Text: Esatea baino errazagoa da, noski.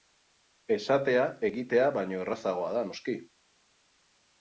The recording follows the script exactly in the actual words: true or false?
false